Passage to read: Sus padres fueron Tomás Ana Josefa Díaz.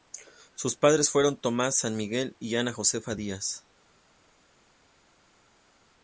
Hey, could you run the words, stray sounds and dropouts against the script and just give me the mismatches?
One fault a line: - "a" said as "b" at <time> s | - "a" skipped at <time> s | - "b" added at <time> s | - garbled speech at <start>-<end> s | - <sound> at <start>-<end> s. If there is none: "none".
- "San Miguel y" added at 1.8 s